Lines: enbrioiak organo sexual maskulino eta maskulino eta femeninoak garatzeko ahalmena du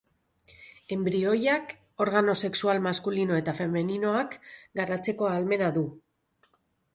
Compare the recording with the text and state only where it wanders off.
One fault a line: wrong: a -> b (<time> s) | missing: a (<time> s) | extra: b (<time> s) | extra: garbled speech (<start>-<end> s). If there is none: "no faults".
missing: maskulino eta (3.5 s)